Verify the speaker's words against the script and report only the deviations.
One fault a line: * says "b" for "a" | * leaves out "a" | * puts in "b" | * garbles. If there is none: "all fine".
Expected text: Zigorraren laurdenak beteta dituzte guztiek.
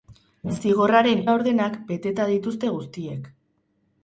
all fine